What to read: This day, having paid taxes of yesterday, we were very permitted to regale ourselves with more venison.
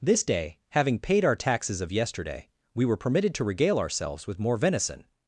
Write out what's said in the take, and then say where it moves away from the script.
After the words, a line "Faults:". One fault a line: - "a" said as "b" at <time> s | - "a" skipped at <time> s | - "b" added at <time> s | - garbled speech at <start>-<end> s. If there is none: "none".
This day, having paid our taxes of yesterday, we were permitted to regale ourselves with more venison.
Faults:
- "our" added at 1.2 s
- "very" skipped at 3.0 s